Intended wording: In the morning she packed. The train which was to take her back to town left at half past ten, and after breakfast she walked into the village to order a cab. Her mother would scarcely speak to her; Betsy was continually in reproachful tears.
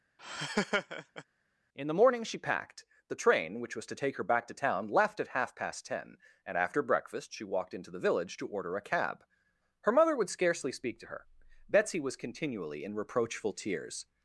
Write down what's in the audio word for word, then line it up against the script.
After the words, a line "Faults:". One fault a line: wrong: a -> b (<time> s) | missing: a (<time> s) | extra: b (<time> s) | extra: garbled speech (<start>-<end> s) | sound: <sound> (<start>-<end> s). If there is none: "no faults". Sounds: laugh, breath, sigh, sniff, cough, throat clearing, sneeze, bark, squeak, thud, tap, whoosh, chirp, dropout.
In the morning she packed. The train which was to take her back to town left at half past ten, and after breakfast she walked into the village to order a cab. Her mother would scarcely speak to her; Betsy was continually in reproachful tears.
Faults:
sound: laugh (0.2-1.2 s)